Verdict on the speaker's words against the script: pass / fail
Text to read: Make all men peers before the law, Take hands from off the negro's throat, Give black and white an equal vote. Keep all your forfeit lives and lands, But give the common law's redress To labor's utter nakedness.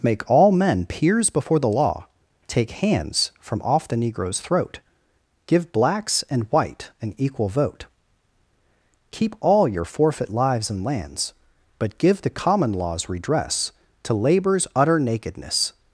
fail